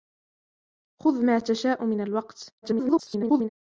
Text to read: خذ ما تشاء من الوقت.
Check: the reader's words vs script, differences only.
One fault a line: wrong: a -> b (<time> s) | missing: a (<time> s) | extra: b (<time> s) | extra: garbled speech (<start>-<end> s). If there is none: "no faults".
extra: garbled speech (2.6-3.5 s)